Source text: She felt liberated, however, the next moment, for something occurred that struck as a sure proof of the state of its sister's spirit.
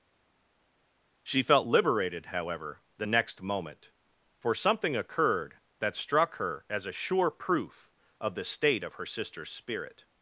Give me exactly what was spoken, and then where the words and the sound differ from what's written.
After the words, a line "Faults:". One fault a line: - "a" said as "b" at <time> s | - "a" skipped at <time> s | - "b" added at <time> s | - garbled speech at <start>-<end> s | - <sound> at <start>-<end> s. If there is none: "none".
She felt liberated, however, the next moment, for something occurred that struck her as a sure proof of the state of her sister's spirit.
Faults:
- "her" added at 6.4 s
- "its" said as "her" at 8.9 s